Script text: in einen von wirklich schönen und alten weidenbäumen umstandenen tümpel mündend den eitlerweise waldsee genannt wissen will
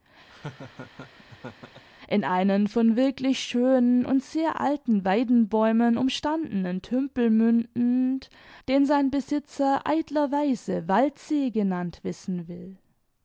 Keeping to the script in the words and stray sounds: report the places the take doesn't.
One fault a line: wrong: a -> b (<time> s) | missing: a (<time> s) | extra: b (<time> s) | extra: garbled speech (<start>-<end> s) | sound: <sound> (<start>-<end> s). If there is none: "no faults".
sound: laugh (0.3-1.8 s)
extra: sehr (4.2 s)
extra: sein besitzer (8.8 s)